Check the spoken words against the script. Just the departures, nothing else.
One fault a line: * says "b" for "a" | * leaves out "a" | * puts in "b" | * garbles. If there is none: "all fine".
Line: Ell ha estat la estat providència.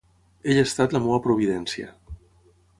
* says "meva" for "estat"